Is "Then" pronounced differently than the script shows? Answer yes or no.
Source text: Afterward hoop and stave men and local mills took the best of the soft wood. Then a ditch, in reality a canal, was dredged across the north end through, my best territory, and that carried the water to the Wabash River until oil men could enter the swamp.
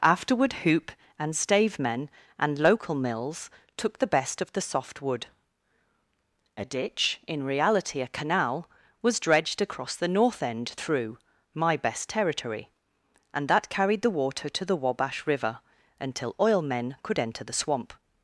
yes